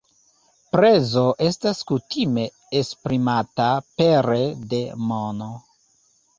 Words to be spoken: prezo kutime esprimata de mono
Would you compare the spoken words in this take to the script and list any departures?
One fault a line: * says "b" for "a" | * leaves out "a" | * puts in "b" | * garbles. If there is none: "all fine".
* puts in "estas"
* puts in "pere"